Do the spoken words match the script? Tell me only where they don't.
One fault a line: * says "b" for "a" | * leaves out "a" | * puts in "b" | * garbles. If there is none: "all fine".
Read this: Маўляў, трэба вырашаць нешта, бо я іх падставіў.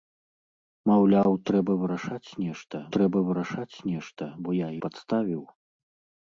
* puts in "трэба вырашаць нешта"
* leaves out "іх"